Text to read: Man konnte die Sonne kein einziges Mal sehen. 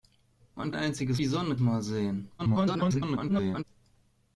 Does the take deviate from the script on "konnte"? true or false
true